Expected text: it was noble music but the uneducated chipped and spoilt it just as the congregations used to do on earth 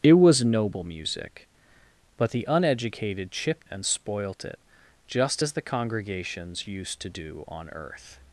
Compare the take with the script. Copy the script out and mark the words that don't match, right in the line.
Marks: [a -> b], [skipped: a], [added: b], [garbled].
it was noble music but the uneducated chipped and spoilt it just as the congregations used to do on earth